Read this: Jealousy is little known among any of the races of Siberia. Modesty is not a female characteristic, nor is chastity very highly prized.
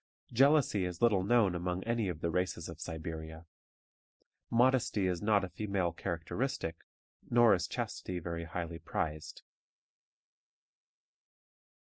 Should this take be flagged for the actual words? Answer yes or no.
no